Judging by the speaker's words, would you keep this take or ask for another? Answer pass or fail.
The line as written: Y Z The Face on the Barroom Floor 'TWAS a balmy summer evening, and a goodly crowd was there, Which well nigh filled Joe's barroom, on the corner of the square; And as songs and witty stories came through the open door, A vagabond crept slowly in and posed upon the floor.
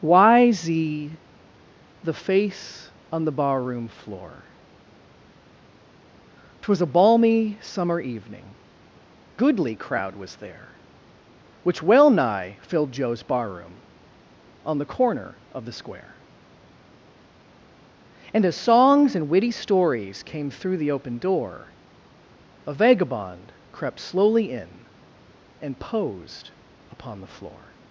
fail